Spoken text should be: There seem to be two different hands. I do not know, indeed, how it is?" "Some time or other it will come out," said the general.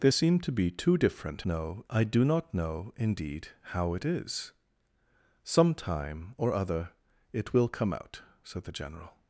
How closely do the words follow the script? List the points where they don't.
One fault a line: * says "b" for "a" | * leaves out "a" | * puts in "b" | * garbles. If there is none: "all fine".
* says "know" for "hands"